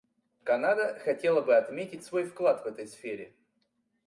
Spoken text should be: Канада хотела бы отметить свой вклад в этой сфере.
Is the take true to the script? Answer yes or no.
yes